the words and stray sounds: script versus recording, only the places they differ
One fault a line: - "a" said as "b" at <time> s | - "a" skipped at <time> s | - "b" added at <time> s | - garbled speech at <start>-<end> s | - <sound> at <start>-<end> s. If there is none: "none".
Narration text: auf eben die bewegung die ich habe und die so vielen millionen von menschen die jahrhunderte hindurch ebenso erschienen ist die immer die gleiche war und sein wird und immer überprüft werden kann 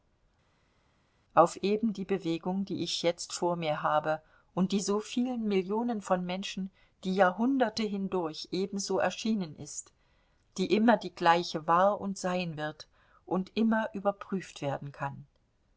- "jetzt vor mir" added at 3.0 s